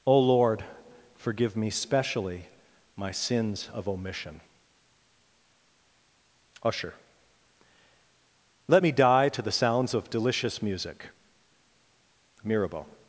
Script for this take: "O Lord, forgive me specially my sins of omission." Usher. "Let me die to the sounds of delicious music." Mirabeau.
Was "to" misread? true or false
false